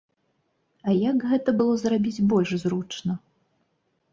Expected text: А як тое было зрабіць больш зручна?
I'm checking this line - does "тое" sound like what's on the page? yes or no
no